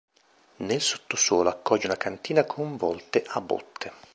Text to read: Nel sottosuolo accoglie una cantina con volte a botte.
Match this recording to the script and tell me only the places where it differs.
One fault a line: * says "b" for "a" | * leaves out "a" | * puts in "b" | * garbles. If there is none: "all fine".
all fine